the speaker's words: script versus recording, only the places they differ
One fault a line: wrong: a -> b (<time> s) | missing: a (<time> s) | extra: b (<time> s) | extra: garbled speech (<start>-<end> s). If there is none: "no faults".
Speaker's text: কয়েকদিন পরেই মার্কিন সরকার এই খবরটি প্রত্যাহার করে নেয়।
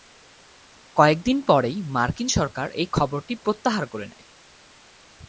no faults